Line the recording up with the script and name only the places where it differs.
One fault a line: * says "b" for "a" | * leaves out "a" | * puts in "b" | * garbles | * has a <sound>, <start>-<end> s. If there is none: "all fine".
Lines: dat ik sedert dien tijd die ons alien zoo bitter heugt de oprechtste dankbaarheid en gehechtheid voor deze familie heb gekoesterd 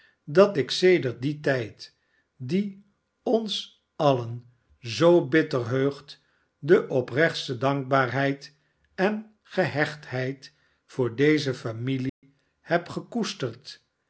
* has a dropout, 12.1-12.2 s